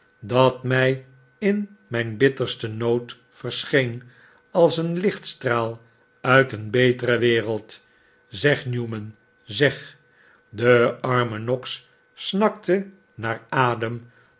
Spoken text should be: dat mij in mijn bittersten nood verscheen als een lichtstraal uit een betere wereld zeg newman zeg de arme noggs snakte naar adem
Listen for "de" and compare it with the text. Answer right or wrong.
right